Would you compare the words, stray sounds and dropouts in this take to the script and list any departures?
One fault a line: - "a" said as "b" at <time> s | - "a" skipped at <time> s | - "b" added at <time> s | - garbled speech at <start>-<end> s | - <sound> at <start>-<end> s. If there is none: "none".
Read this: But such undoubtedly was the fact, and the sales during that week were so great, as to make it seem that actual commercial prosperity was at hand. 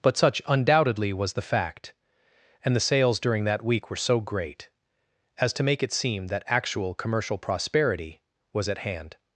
none